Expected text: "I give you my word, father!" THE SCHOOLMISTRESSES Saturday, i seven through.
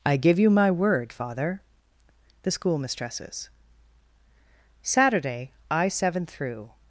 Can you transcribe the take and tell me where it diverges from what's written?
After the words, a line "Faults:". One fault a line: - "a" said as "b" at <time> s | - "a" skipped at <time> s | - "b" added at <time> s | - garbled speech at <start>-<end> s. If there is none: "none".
"I give you my word, father!" THE SCHOOLMISTRESSES Saturday, i seven through.
Faults:
none